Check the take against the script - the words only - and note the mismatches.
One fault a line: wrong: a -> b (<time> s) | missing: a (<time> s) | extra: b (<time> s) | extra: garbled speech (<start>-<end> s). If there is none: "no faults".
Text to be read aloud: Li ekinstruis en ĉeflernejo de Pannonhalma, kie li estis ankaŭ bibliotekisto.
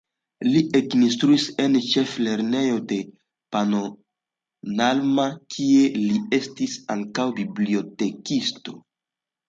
no faults